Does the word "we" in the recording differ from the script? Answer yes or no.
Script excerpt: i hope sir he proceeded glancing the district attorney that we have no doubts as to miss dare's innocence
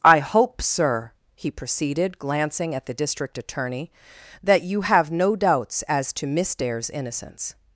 yes